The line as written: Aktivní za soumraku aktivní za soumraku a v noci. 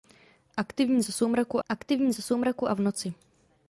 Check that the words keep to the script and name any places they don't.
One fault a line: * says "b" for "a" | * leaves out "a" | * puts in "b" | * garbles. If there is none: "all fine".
all fine